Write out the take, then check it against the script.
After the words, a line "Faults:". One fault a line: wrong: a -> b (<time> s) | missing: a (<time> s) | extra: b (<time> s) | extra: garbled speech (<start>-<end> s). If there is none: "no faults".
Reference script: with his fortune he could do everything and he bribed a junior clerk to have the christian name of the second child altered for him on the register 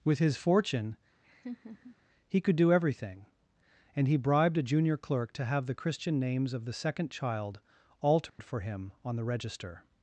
with his fortune he could do everything and he bribed a junior clerk to have the christian names of the second child altered for him on the register
Faults:
wrong: name -> names (6.2 s)